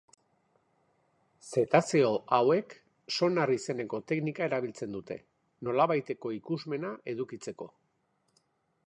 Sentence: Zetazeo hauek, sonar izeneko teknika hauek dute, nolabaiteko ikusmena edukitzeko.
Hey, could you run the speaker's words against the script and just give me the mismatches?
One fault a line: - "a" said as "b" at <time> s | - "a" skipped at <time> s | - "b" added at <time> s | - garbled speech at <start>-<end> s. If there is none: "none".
- "hauek" said as "erabiltzen" at 4.5 s